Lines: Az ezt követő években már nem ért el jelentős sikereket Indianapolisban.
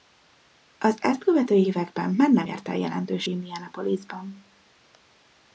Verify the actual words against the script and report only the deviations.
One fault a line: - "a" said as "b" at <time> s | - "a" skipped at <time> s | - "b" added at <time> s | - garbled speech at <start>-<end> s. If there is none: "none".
- "sikereket" skipped at 3.3 s